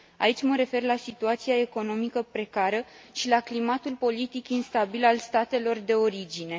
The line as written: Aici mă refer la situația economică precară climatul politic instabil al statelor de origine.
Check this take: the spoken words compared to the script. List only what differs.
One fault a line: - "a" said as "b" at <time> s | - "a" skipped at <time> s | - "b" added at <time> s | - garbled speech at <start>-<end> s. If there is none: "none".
- "și la" added at 3.1 s